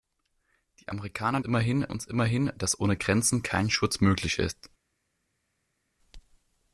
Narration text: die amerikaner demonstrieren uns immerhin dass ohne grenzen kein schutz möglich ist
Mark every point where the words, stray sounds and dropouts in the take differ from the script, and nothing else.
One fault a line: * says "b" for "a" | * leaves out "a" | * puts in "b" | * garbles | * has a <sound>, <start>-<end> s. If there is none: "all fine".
* says "immerhin" for "demonstrieren"